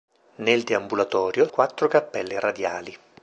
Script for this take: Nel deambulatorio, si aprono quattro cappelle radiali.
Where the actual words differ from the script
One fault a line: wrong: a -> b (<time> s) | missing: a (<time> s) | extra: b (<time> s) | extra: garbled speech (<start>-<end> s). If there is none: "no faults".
missing: si aprono (1.5 s)